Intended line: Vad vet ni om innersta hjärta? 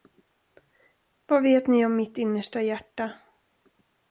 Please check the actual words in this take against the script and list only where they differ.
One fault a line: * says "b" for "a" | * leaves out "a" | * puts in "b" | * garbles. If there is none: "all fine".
* puts in "mitt"